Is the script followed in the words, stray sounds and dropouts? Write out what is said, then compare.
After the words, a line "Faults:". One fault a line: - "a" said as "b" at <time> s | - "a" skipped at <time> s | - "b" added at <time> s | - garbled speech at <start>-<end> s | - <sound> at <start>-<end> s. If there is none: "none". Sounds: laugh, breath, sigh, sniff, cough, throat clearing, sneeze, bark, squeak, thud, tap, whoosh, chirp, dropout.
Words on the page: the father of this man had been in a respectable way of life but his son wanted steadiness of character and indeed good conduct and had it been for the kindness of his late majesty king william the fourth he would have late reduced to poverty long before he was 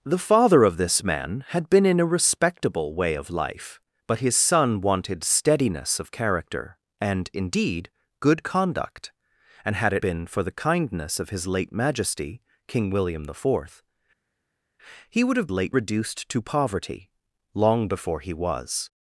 the father of this man had been in a respectable way of life but his son wanted steadiness of character and indeed good conduct and had it been for the kindness of his late majesty king william the fourth he would have late reduced to poverty long before he was
Faults:
none